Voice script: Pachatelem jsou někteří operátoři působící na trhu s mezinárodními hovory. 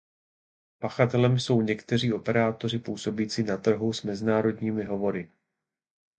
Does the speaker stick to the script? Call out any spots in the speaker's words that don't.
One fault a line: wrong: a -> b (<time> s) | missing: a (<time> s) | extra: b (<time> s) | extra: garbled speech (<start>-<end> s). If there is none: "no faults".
no faults